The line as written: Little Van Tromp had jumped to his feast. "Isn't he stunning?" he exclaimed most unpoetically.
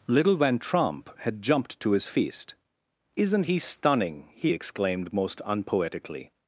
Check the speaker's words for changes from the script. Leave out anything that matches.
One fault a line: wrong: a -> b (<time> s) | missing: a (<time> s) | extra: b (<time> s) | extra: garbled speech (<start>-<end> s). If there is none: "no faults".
no faults